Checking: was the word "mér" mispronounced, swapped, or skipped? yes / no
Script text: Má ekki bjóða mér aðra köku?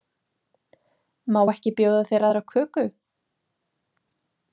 yes